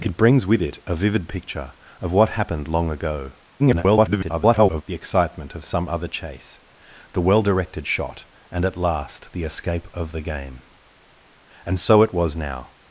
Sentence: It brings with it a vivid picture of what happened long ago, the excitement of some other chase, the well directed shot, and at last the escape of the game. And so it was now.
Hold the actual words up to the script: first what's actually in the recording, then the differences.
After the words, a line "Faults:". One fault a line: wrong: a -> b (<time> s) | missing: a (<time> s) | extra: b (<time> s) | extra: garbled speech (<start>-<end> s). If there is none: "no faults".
It brings with it a vivid picture of what happened long ago, [garbled] the excitement of some other chase, the well directed shot, and at last the escape of the game. And so it was now.
Faults:
extra: garbled speech (3.6-4.8 s)